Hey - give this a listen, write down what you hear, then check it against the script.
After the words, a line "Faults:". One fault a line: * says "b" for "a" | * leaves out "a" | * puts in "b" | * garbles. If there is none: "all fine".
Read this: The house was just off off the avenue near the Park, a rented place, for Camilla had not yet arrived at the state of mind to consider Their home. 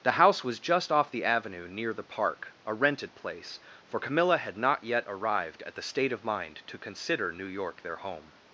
The house was just off the avenue near the Park, a rented place, for Camilla had not yet arrived at the state of mind to consider New York their home.
Faults:
* leaves out "off"
* puts in "New York"